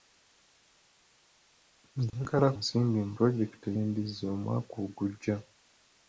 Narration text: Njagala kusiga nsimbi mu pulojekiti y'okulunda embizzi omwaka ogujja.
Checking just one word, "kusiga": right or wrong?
wrong